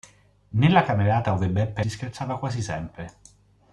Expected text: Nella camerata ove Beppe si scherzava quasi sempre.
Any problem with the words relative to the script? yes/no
no